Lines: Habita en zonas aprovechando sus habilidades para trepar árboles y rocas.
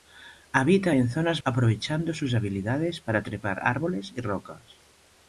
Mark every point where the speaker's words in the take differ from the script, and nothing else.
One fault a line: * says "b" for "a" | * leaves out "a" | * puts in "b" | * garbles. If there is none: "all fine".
all fine